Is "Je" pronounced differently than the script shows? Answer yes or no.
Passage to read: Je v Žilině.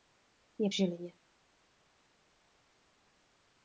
no